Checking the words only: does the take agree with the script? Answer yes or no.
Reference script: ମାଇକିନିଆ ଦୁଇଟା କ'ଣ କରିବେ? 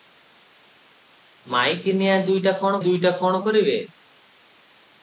no